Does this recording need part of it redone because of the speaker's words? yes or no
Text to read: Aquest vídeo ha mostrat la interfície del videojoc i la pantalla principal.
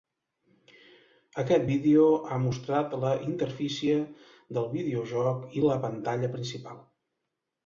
no